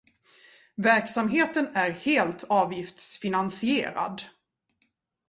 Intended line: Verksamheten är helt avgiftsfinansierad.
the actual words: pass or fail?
pass